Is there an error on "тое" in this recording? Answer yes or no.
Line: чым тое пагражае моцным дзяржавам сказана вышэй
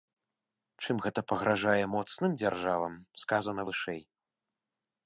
yes